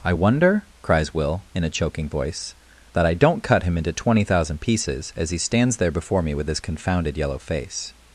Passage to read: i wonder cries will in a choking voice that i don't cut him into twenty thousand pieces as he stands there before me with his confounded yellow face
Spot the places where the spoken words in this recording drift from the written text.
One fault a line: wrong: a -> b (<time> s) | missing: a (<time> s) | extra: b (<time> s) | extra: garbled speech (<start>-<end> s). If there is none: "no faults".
no faults